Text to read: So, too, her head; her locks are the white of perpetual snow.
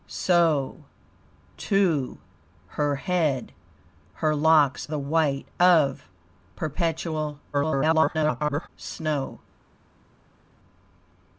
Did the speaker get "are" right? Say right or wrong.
wrong